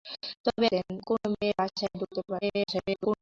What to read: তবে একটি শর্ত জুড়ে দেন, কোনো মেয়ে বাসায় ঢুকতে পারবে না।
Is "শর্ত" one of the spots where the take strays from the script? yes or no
yes